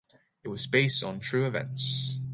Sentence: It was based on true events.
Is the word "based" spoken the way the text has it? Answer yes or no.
yes